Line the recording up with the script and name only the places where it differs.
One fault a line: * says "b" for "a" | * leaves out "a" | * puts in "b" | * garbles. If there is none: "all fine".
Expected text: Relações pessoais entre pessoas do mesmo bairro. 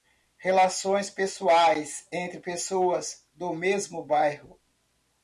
all fine